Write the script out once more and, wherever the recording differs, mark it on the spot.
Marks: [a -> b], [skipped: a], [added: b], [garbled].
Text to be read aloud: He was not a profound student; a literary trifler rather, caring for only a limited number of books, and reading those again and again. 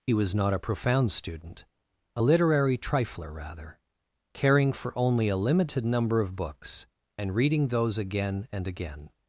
He was not a profound student; a literary trifler rather, caring for only a limited number of books, and reading those again and again.